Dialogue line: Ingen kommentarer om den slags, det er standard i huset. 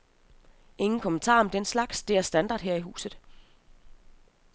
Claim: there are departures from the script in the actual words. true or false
true